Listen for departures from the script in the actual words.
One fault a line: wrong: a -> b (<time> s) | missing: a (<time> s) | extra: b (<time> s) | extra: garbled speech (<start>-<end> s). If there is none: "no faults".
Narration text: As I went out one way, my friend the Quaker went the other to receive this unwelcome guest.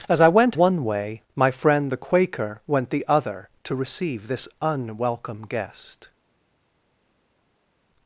missing: out (0.6 s)